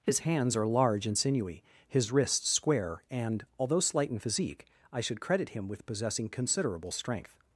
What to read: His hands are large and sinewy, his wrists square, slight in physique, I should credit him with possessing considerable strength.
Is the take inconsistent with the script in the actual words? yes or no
yes